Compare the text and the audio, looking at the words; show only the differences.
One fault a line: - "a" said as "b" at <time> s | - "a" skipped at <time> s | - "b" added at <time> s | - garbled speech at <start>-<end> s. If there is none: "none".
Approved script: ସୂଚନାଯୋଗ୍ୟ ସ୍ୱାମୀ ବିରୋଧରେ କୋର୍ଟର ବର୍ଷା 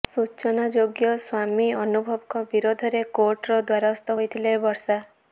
- "ଅନୁଭବଙ୍କ" added at 1.8 s
- "ଦ୍ୱାରସ୍ଥ ହୋଇଥିଲେ" added at 3.6 s